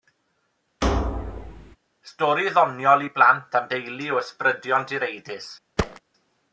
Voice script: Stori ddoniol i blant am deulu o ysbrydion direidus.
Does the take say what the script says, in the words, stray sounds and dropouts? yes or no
no